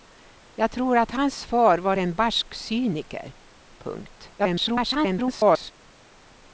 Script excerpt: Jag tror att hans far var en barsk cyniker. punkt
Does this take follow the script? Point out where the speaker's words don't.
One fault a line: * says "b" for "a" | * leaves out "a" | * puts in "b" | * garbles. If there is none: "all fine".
* garbles